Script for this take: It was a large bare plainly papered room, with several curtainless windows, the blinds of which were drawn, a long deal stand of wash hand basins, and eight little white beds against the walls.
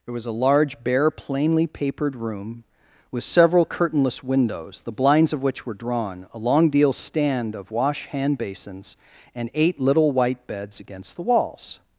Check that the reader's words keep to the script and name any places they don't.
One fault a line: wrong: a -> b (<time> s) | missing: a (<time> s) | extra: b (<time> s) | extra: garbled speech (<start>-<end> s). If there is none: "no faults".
no faults